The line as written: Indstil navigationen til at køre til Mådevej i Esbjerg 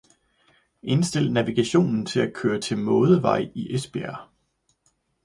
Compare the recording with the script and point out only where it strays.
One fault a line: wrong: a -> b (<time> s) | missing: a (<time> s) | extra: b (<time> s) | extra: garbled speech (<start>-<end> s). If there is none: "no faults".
no faults